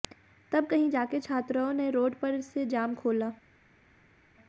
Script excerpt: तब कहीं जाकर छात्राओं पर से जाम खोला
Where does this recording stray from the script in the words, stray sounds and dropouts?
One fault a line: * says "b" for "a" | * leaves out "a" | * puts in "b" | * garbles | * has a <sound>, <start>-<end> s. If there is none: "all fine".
* puts in "ने रोड"